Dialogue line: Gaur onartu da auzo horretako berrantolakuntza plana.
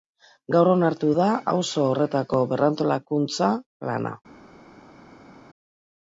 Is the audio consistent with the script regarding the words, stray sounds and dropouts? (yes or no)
yes